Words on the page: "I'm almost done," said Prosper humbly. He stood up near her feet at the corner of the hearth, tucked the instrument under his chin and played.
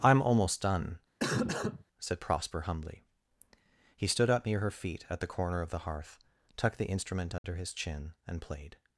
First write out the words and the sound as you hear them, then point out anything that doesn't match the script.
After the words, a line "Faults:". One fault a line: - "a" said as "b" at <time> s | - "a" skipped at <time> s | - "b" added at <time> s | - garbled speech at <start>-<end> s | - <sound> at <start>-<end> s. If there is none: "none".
"I'm almost done," said Prosper humbly. He stood up near her feet at the corner of the hearth, tucked the instrument under his chin and played.
Faults:
- cough at 1.2-1.8 s
- dropout at 7.4-7.4 s